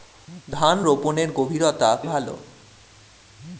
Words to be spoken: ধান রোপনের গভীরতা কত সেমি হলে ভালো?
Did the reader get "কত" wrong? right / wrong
wrong